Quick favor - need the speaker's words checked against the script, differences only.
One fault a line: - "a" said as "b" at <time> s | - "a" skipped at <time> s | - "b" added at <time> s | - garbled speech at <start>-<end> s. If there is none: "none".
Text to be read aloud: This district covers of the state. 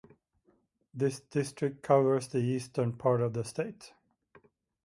- "the Eastern part" added at 2.3 s